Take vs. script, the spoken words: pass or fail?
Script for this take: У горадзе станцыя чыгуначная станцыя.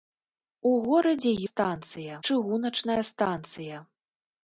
pass